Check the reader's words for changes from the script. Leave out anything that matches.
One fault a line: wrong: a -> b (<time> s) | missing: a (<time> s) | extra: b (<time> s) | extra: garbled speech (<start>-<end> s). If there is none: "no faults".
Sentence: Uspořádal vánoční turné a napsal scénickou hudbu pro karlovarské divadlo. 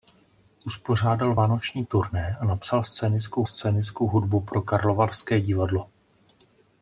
extra: scénickou (3.4 s)